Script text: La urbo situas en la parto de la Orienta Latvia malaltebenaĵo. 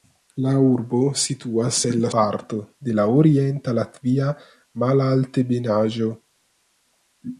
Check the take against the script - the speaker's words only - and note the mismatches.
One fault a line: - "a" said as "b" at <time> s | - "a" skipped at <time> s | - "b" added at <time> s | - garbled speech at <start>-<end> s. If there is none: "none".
none